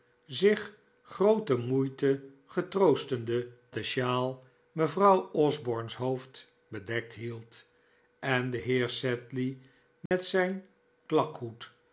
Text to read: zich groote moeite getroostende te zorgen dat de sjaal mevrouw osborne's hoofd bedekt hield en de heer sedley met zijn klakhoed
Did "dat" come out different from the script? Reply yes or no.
yes